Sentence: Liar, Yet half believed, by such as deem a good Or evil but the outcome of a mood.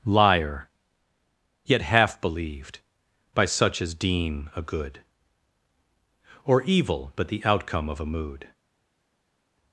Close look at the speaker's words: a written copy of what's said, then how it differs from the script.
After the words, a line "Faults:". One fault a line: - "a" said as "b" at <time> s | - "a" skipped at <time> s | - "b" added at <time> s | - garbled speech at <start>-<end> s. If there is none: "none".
Liar, Yet half believed, by such as deem a good Or evil but the outcome of a mood.
Faults:
none